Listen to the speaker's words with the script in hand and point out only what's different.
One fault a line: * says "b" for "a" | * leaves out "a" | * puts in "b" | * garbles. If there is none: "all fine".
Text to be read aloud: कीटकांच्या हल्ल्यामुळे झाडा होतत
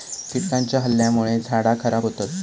* puts in "खराब"